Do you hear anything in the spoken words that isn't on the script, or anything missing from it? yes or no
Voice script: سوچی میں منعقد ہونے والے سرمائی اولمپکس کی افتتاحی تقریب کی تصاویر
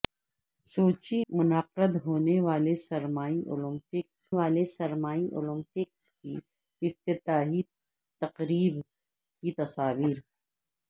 yes